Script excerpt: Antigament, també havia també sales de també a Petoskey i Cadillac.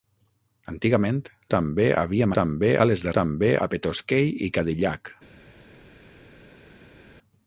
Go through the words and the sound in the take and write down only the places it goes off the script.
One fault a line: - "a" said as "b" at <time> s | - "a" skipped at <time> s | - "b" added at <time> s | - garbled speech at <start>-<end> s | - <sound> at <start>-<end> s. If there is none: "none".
none